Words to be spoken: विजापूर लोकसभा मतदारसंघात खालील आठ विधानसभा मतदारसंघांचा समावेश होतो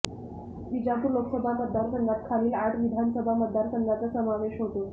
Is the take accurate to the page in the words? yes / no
yes